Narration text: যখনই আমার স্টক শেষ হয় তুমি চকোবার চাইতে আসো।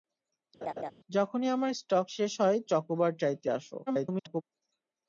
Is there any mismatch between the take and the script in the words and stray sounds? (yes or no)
yes